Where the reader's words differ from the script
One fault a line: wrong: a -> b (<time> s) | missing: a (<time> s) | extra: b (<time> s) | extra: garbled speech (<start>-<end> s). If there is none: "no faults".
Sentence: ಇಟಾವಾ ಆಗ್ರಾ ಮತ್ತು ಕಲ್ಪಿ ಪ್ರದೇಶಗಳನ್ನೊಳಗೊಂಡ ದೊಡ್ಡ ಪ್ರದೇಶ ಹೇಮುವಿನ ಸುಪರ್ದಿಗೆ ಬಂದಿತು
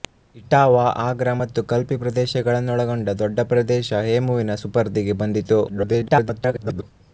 extra: garbled speech (5.7-6.8 s)